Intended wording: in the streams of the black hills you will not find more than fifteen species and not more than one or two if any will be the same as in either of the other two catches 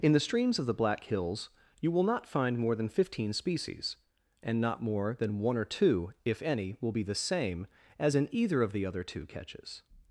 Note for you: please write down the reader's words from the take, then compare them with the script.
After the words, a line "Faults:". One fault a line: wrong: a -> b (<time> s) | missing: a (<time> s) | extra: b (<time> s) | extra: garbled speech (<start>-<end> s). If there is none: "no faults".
in the streams of the black hills you will not find more than fifteen species and not more than one or two if any will be the same as in either of the other two catches
Faults:
no faults